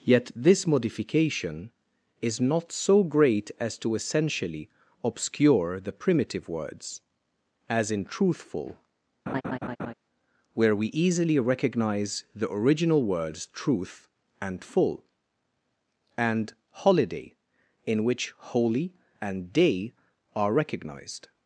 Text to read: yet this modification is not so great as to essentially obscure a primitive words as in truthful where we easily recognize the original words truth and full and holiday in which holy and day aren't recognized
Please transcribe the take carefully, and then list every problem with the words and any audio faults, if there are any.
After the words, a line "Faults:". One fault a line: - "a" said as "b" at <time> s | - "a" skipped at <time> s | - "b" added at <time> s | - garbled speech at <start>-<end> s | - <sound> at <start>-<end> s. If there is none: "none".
yet this modification is not so great as to essentially obscure the primitive words as in truthful where we easily recognize the original words truth and full and holiday in which holy and day are recognized
Faults:
- "a" said as "the" at 5.8 s
- laugh at 9.3-9.9 s
- "aren't" said as "are" at 20.4 s